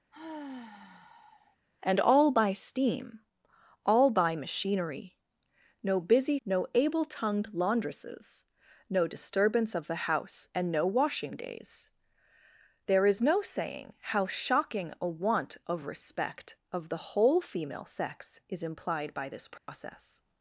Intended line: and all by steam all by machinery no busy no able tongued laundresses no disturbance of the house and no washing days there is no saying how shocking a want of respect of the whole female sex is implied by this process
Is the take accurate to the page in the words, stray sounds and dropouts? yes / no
no